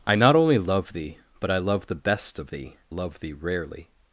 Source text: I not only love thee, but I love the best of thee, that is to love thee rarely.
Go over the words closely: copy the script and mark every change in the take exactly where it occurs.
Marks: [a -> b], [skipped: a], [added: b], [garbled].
I not only love thee, but I love the best of thee, [skipped: that is to] love thee rarely.